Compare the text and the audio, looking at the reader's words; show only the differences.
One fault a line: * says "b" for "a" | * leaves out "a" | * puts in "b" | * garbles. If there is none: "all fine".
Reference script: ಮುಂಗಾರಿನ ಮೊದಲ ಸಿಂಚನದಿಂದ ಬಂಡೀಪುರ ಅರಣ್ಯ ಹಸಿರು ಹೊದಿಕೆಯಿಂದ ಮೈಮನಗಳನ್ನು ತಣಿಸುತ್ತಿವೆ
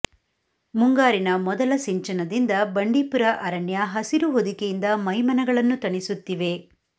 all fine